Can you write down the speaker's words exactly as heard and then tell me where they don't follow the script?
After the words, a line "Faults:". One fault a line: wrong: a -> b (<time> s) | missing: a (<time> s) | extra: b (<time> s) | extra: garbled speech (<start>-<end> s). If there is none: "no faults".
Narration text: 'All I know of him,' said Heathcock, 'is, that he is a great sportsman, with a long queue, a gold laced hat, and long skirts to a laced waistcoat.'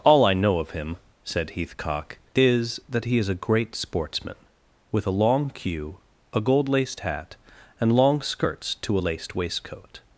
'All I know of him,' said Heathcock, 'is, that he is a great sportsman, with a long queue, a gold laced hat, and long skirts to a laced waistcoat.'
Faults:
no faults